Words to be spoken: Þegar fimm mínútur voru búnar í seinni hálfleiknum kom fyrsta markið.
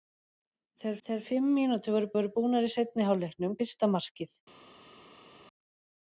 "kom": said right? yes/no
no